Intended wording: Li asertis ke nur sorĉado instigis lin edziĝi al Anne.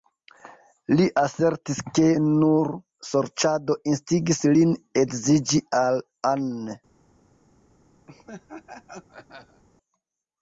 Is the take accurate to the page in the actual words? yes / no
yes